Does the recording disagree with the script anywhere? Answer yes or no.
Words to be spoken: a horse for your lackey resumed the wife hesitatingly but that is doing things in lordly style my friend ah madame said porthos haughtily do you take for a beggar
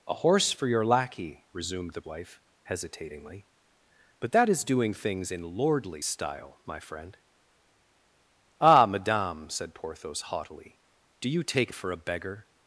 no